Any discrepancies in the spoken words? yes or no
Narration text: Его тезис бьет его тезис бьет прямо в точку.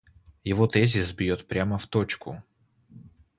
yes